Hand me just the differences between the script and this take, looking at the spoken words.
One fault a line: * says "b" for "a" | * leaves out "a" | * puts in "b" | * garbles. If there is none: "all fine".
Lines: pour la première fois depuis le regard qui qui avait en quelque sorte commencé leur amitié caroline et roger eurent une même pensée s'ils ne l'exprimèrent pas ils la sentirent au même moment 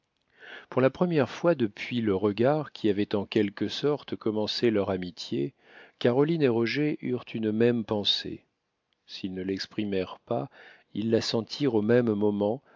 * leaves out "qui"